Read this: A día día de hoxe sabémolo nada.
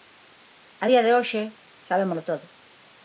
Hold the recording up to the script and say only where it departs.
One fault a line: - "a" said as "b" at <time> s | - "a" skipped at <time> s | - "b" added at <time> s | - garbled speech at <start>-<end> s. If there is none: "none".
- "día" skipped at 1.0 s
- "nada" said as "todo" at 2.3 s